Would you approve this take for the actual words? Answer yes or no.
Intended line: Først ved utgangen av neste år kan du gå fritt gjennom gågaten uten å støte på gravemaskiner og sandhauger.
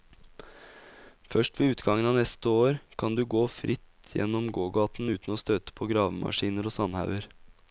yes